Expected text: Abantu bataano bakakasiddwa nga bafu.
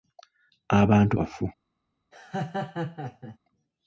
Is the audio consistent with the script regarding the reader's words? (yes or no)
no